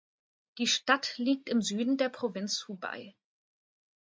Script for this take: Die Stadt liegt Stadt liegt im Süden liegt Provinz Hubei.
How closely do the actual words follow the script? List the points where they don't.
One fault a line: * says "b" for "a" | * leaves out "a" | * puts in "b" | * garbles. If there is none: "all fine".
* leaves out "Stadt liegt"
* says "der" for "liegt"